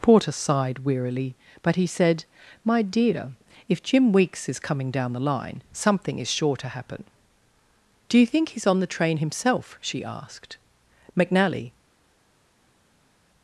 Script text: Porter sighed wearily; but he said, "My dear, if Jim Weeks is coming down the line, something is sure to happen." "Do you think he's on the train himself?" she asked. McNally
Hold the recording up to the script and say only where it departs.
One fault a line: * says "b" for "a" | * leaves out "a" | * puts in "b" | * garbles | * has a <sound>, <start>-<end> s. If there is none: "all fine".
all fine